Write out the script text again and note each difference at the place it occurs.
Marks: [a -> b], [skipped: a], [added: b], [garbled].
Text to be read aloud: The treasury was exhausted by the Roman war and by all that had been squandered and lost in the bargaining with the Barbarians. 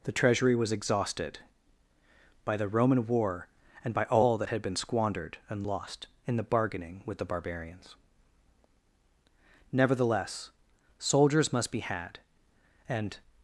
The treasury was exhausted by the Roman war and by all that had been squandered and lost in the bargaining with the Barbarians. [added: Nevertheless soldiers must be had and]